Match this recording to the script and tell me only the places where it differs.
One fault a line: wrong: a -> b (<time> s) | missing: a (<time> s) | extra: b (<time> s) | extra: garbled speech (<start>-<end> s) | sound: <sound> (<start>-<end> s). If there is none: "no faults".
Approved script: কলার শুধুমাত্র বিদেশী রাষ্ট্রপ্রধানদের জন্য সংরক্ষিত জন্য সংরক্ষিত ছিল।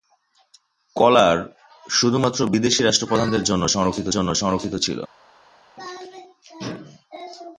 no faults